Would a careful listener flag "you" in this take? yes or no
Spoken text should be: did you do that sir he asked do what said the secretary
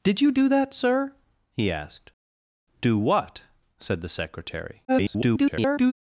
no